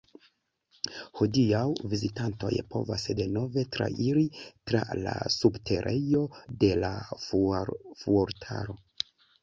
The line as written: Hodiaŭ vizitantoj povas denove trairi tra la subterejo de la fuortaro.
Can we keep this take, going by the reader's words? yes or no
yes